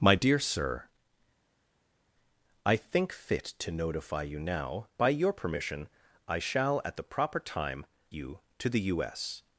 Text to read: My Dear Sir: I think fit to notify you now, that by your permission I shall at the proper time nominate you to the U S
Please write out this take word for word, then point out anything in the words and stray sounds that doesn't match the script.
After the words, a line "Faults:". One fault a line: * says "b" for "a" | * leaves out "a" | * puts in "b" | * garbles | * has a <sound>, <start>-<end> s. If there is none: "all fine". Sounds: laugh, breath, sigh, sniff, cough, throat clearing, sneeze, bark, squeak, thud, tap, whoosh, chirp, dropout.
My Dear Sir: I think fit to notify you now, by your permission I shall at the proper time you to the U S
Faults:
* leaves out "that"
* leaves out "nominate"